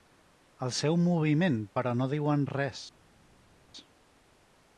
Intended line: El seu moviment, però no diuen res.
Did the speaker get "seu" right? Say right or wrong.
right